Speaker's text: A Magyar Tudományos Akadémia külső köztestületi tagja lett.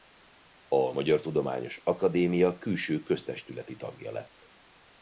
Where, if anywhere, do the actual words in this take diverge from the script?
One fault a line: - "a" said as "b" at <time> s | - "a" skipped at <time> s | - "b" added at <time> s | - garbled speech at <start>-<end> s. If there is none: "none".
none